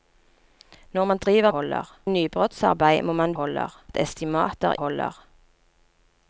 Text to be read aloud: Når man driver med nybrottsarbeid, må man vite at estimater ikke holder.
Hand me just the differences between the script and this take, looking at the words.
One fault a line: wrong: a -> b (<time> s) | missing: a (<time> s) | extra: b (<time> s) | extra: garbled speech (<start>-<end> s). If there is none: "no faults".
wrong: med -> holder (1.5 s)
wrong: vite -> holder (3.3 s)
missing: ikke (4.8 s)